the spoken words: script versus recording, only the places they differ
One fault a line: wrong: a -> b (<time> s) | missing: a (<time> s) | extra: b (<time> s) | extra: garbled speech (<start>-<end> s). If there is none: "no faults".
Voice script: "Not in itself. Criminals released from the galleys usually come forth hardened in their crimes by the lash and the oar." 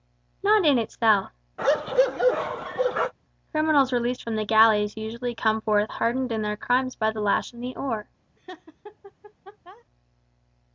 no faults